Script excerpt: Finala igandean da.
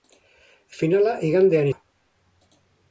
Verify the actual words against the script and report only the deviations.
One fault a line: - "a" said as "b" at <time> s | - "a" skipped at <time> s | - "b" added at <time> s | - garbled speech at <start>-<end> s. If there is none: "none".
none